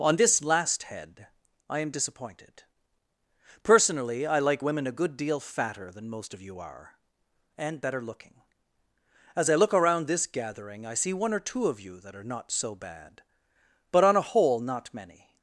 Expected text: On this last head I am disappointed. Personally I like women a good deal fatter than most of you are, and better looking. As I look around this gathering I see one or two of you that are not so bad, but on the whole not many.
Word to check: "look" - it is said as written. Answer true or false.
true